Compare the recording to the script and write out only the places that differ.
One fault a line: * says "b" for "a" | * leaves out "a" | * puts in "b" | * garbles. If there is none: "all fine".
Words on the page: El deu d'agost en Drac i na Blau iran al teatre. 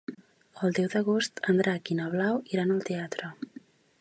all fine